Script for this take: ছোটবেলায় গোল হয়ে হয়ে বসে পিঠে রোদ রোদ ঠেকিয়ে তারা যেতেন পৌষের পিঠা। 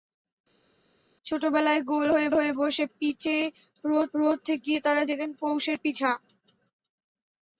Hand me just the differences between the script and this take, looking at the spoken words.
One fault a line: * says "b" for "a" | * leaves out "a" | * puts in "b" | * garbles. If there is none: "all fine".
all fine